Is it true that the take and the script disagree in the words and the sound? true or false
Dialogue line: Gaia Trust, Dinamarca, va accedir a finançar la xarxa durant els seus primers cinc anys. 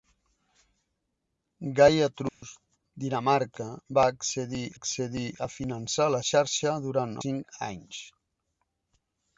true